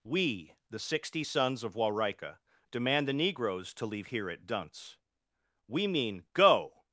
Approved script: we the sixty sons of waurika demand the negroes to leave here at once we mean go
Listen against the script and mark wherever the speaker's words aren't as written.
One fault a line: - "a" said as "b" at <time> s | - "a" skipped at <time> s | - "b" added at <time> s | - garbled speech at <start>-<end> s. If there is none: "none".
- "once" said as "dunce" at 4.5 s